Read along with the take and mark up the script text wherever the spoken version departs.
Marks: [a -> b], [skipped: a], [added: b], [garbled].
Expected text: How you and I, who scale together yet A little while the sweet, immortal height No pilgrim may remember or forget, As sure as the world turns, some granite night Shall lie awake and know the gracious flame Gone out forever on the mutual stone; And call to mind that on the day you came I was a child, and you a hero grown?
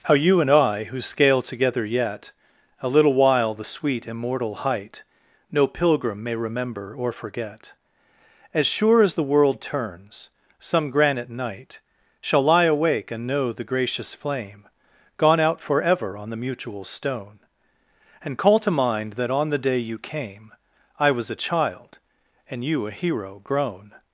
How you and I, who scale together yet A little while the sweet, immortal height No pilgrim may remember or forget, As sure as the world turns, some granite night Shall lie awake and know the gracious flame Gone out forever on the mutual stone; And call to mind that on the day you came I was a child, and you a hero grown?